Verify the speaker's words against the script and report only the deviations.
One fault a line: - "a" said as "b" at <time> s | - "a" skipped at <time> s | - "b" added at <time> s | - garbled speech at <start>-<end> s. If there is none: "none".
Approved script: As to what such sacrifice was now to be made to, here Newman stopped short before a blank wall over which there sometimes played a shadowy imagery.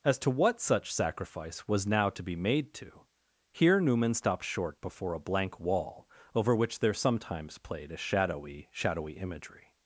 - "shadowy" added at 8.7 s